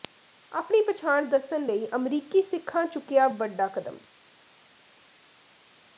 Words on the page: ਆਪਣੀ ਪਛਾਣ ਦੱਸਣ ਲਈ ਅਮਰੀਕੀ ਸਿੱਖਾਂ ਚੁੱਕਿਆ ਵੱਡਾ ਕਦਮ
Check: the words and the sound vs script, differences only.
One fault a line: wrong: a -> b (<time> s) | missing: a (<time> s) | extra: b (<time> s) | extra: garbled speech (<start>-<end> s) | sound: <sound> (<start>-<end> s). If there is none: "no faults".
no faults